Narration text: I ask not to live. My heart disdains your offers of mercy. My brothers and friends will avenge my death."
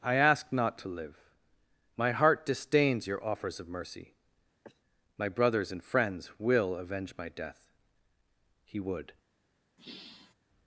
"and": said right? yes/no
yes